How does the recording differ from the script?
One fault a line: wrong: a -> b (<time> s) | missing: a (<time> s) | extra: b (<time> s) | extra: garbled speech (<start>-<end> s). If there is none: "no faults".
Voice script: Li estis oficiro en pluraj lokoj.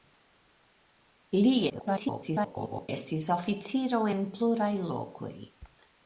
extra: garbled speech (1.7-2.9 s)